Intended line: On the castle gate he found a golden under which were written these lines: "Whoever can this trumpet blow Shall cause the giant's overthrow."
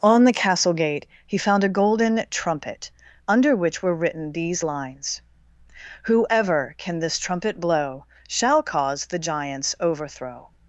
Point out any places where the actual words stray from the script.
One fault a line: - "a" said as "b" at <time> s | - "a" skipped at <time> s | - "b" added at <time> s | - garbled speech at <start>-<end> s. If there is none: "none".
- "trumpet" added at 2.3 s